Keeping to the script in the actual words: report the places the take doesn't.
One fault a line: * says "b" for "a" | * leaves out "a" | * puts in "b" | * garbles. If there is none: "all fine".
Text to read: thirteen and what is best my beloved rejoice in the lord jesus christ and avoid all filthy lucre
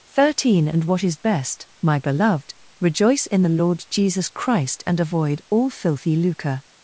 all fine